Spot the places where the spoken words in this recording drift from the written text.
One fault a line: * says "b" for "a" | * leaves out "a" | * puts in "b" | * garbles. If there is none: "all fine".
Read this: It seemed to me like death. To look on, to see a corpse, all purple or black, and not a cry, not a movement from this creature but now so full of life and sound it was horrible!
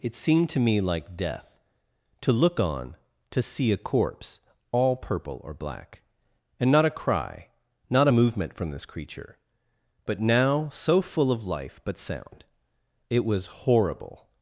* says "but" for "and"